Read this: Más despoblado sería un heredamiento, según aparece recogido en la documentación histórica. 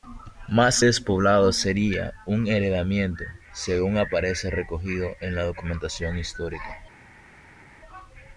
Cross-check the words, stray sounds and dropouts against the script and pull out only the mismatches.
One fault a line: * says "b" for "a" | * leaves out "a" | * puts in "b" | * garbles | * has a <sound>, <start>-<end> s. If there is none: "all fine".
all fine